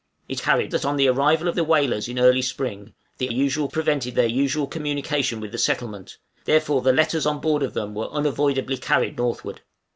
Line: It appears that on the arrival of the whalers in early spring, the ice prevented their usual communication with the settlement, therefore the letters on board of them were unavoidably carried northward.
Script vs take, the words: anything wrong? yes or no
yes